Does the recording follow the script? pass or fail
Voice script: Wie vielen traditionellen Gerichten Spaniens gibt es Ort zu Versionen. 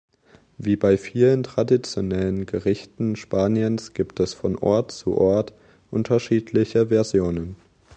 fail